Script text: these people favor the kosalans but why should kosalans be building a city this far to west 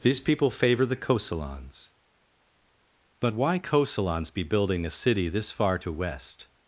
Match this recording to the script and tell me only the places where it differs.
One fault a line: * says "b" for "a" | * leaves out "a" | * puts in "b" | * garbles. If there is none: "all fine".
* leaves out "should"